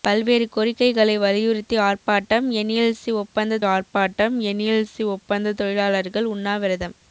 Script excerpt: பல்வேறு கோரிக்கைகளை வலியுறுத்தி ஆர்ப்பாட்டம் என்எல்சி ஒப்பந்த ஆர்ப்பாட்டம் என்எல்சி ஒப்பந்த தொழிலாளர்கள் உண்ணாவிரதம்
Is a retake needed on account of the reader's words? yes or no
no